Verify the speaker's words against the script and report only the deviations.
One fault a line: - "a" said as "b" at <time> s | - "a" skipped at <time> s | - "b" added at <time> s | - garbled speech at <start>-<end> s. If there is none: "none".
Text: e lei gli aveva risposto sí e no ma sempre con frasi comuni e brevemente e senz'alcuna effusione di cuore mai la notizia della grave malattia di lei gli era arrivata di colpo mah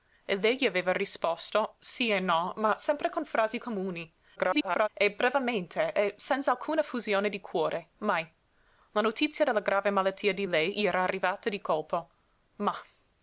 - garbled speech at 4.4-4.9 s